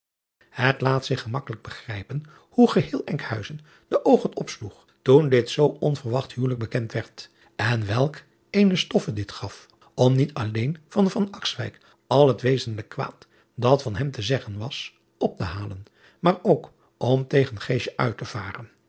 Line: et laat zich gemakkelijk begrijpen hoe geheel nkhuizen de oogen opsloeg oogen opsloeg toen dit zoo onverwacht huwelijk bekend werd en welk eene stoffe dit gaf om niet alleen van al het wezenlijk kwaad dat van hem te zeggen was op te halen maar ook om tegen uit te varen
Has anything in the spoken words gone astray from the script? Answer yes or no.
yes